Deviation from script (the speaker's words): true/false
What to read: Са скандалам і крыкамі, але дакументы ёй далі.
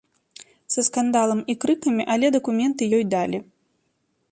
false